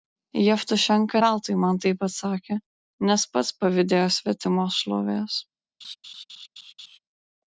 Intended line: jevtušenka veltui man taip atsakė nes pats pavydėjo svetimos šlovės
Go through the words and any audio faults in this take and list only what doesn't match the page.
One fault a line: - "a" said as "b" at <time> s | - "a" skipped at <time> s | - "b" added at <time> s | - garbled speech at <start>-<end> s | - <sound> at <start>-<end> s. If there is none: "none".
- laugh at 5.8-7.0 s